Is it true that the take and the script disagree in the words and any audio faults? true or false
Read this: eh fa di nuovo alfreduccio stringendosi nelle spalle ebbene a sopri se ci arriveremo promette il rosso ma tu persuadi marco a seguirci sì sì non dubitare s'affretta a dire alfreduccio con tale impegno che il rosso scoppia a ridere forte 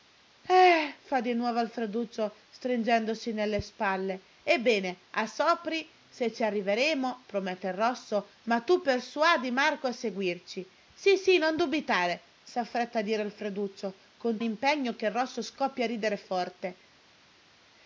true